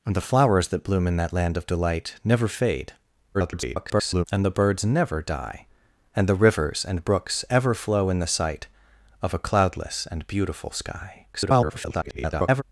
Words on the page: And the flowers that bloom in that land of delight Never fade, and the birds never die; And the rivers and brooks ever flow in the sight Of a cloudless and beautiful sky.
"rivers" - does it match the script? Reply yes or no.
yes